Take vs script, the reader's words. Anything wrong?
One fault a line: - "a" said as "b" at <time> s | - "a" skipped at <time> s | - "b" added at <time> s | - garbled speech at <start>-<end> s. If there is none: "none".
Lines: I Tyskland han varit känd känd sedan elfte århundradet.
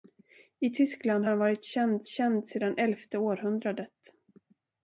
none